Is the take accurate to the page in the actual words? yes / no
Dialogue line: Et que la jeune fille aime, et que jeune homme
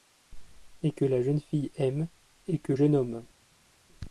yes